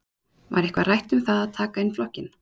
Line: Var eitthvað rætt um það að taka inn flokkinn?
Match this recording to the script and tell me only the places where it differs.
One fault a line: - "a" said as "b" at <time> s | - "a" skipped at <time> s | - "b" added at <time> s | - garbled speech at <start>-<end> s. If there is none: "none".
none